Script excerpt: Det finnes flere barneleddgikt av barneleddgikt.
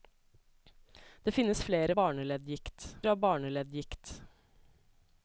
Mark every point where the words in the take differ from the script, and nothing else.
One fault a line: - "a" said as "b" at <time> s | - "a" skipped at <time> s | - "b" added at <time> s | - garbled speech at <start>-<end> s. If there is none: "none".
none